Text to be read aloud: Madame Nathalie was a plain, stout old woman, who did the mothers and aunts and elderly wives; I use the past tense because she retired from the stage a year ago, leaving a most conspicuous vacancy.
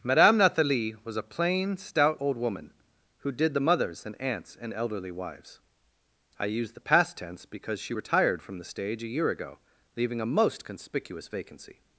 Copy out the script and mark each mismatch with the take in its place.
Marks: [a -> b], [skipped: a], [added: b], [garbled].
Madame Nathalie was a plain, stout old woman, who did the mothers and aunts and elderly wives; I use the past tense because she retired from the stage a year ago, leaving a most conspicuous vacancy.